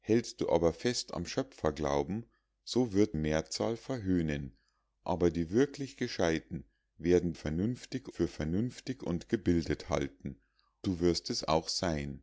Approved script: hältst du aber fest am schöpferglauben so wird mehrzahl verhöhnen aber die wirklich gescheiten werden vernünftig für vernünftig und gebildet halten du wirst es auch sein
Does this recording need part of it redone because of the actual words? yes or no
no